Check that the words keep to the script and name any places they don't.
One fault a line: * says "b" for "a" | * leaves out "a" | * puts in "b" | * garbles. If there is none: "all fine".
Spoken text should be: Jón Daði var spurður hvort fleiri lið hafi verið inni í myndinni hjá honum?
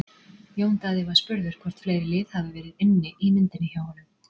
all fine